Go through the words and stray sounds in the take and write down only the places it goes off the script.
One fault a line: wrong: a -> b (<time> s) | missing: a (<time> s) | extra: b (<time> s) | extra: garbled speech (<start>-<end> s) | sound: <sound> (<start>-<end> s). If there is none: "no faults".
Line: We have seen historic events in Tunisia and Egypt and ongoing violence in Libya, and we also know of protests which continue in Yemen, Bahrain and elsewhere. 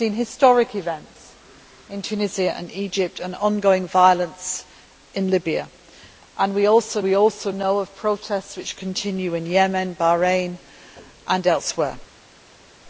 extra: we also (7.0 s)